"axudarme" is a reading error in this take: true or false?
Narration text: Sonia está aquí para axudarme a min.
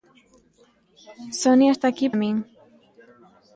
true